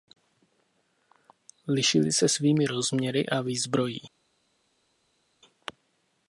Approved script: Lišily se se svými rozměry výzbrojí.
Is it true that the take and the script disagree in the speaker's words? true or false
true